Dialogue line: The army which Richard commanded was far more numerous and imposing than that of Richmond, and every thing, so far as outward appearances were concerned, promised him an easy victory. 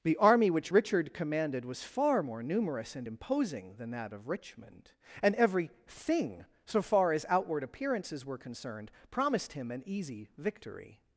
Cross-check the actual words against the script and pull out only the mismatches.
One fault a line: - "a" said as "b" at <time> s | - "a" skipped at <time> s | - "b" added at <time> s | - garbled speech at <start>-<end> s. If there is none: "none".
none